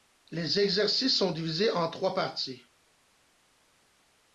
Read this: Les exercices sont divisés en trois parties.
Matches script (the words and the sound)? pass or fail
pass